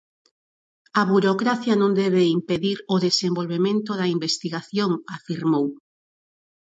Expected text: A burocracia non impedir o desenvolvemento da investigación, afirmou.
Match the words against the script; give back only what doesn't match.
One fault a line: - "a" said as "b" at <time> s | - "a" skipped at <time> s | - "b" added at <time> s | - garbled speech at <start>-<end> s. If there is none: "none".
- "debe" added at 2.0 s